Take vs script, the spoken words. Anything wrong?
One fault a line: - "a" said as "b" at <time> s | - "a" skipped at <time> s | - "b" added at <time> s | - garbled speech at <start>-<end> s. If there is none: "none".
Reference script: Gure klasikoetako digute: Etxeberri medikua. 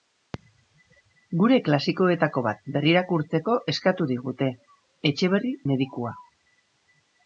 - "bat berrirakurtzeko eskatu" added at 2.5 s